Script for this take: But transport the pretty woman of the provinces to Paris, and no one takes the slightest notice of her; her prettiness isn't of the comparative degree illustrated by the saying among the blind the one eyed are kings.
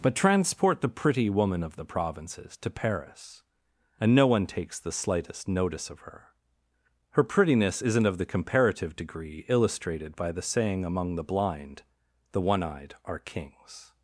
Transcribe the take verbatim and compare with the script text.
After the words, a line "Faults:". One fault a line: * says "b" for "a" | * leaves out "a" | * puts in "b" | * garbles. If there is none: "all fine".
But transport the pretty woman of the provinces to Paris, and no one takes the slightest notice of her; her prettiness isn't of the comparative degree illustrated by the saying among the blind the one eyed are kings.
Faults:
all fine